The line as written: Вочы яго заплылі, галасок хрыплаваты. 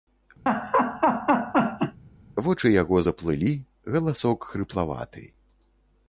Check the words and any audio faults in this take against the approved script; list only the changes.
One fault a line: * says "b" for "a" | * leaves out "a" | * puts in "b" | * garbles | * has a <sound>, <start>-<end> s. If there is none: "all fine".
* has a laugh, 0.5-2.0 s